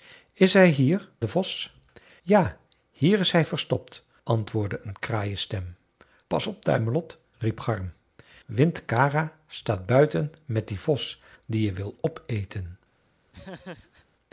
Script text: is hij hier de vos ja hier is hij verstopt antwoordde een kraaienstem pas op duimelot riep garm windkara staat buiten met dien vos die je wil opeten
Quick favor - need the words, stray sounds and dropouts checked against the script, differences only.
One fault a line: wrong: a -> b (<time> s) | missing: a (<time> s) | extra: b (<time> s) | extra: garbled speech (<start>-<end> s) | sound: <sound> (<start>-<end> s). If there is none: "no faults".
sound: laugh (13.3-14.1 s)